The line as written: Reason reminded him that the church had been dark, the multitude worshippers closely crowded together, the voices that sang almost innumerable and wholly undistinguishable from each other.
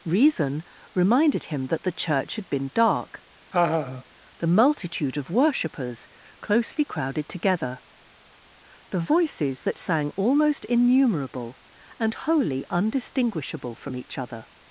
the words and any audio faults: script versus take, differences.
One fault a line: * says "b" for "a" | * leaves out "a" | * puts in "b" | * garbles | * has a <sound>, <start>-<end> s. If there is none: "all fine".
* has a laugh, 3.5-4.0 s
* puts in "of"